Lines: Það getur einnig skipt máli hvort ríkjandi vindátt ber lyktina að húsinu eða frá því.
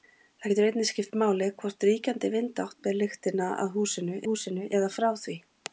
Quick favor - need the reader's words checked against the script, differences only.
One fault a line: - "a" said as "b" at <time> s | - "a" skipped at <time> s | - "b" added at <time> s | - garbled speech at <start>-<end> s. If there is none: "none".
- "húsinu" added at 4.3 s